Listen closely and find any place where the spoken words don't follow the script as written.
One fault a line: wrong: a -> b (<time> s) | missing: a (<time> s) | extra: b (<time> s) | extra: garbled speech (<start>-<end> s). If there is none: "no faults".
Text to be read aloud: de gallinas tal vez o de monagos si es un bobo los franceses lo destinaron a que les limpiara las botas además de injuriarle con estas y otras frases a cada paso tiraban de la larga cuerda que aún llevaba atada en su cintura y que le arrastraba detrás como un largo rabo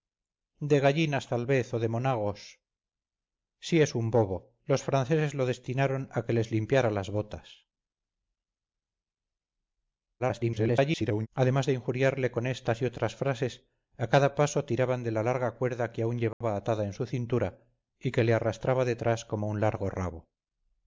extra: garbled speech (10.2-11.3 s)